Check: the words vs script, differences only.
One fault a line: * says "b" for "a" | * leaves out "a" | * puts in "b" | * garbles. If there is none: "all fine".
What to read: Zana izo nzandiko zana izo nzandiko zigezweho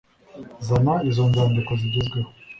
* leaves out "zana izo nzandiko"